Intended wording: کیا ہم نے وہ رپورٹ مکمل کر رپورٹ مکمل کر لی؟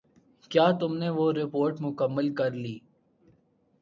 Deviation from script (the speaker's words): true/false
true